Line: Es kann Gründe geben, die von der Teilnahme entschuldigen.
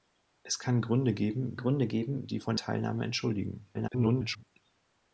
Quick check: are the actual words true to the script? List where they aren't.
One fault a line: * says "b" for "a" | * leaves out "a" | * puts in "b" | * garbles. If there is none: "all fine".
* puts in "Gründe geben"
* leaves out "der"
* garbles